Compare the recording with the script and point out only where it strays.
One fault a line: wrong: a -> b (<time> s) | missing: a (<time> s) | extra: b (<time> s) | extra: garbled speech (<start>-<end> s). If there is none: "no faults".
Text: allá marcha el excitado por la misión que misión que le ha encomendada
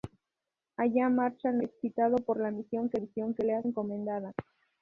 no faults